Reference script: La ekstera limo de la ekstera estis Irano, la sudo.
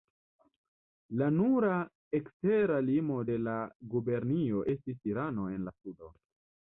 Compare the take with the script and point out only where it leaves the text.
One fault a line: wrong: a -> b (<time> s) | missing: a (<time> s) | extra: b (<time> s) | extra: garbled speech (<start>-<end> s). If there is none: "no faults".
extra: nura (1.3 s)
wrong: ekstera -> gubernio (3.9 s)
extra: en (5.6 s)